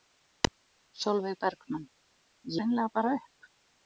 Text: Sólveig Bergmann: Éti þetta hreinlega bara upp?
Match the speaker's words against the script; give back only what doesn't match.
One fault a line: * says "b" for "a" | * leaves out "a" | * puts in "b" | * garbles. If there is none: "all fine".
* leaves out "Éti þetta"